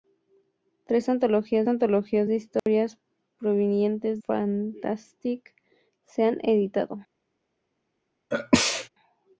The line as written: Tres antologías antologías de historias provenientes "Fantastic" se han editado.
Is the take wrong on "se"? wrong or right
right